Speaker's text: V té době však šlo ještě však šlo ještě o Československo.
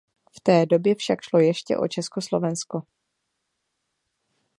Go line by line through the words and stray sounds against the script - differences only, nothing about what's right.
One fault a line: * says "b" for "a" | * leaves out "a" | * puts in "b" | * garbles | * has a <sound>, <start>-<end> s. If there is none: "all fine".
* leaves out "však šlo ještě"